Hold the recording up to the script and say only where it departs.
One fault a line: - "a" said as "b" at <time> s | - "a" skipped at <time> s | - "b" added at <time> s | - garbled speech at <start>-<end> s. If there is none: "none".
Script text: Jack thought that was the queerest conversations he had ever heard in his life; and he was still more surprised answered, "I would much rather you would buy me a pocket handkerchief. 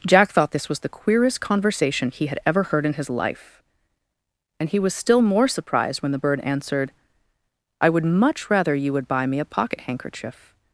- "that" said as "this" at 0.5 s
- "conversations" said as "conversation" at 1.4 s
- "when the bird" added at 6.0 s